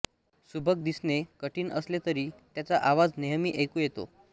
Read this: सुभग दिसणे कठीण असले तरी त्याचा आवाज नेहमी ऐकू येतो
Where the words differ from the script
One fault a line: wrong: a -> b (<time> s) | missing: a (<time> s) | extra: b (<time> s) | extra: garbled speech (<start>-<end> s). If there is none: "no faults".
no faults